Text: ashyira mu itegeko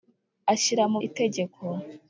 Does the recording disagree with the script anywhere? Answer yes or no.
no